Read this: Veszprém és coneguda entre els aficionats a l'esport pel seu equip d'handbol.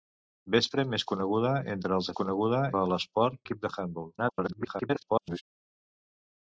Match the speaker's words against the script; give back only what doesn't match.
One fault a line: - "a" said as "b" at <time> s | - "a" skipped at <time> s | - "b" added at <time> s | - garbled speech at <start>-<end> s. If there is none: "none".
- "aficionats" said as "coneguda" at 2.2 s
- "pel seu" skipped at 3.4 s
- garbled speech at 4.2-5.4 s